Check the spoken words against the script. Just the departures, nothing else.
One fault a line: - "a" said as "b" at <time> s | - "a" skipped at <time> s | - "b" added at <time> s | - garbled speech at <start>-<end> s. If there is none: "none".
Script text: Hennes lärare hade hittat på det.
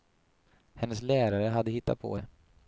none